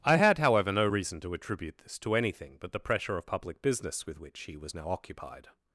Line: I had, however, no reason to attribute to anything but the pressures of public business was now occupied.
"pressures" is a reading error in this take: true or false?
true